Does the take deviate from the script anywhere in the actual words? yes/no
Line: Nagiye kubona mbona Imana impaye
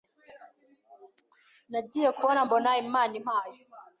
no